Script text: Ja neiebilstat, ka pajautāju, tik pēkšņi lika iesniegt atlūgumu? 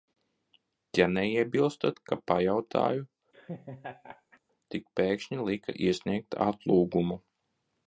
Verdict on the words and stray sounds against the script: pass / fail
fail